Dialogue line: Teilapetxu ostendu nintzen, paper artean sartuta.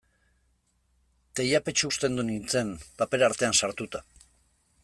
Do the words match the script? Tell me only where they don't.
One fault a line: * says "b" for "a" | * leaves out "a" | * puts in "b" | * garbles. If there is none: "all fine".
all fine